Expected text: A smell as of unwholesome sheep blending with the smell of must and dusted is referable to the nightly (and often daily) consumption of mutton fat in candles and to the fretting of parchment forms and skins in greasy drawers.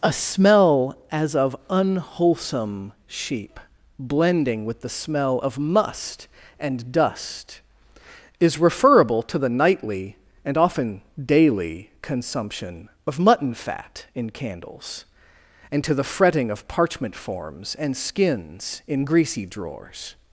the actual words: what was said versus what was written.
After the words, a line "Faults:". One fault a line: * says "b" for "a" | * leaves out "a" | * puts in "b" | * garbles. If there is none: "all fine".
A smell as of unwholesome sheep blending with the smell of must and dust is referable to the nightly (and often daily) consumption of mutton fat in candles and to the fretting of parchment forms and skins in greasy drawers.
Faults:
* says "dust" for "dusted"